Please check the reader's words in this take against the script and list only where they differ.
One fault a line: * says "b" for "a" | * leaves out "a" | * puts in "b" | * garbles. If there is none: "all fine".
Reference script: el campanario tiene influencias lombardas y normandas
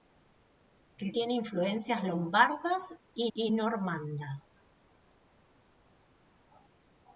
* leaves out "campanario"
* puts in "y"